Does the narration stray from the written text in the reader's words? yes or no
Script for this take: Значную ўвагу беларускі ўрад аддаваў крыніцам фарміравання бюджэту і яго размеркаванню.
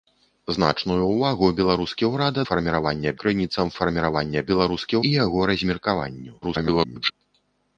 yes